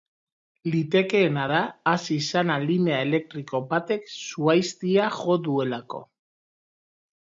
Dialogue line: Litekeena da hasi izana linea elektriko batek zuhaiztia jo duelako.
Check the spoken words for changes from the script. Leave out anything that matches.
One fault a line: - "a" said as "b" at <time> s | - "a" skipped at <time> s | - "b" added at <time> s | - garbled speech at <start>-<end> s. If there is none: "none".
none